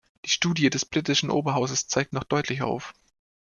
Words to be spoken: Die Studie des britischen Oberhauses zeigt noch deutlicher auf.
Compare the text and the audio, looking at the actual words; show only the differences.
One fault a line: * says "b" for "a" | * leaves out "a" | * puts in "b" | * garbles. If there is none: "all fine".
all fine